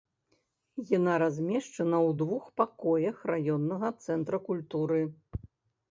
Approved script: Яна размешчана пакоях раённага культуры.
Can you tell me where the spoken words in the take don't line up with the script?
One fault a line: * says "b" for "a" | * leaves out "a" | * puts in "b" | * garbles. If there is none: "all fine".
* puts in "ў двух"
* puts in "цэнтра"